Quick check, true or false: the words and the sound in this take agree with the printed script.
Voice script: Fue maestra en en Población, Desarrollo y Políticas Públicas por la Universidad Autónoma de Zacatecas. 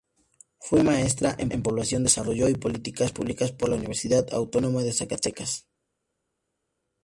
true